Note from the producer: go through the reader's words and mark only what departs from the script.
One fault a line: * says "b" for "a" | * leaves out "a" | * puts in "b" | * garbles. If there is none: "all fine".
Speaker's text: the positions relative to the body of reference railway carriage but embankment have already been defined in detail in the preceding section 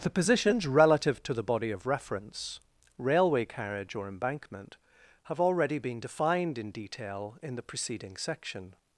* says "or" for "but"